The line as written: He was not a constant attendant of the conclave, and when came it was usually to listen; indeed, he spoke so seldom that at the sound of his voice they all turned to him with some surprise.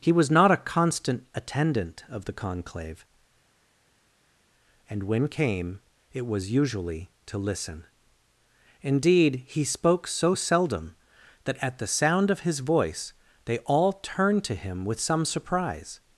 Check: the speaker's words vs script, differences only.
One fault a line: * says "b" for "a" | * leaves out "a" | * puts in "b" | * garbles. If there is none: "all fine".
all fine